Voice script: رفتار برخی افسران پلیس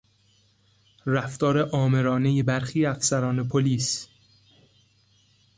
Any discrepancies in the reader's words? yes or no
yes